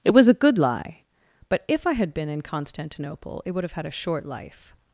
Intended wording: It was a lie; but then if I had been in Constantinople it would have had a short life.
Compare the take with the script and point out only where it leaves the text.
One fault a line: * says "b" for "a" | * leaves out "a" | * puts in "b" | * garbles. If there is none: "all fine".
* puts in "good"
* leaves out "then"